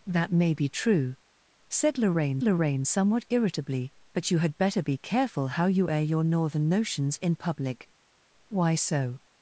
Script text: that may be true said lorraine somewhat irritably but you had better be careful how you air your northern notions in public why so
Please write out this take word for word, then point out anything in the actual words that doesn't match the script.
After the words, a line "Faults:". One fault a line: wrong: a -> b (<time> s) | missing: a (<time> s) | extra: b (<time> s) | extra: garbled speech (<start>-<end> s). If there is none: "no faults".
that may be true said lorraine lorraine somewhat irritably but you had better be careful how you air your northern notions in public why so
Faults:
extra: lorraine (2.4 s)